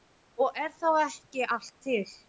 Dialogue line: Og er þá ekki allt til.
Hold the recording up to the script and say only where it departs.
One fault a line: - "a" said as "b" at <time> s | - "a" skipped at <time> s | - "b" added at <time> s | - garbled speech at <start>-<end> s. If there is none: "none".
none